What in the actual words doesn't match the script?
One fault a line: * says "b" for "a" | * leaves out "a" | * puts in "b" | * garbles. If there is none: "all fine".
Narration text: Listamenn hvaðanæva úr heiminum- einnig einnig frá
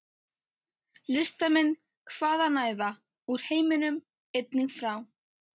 * leaves out "einnig"